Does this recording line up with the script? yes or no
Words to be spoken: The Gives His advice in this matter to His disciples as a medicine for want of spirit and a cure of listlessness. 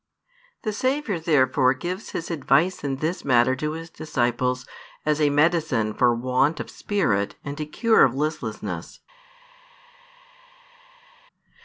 no